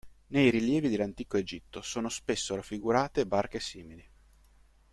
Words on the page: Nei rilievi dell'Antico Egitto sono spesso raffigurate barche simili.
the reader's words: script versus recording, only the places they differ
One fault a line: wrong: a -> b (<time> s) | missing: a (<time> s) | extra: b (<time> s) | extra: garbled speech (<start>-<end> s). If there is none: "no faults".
no faults